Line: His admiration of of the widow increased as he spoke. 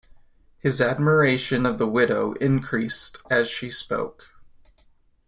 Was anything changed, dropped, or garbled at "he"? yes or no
yes